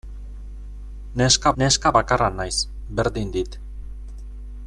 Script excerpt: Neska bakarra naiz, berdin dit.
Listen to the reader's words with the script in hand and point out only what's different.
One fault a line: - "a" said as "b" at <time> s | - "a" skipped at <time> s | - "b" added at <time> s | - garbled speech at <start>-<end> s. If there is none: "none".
- "neska" added at 1.6 s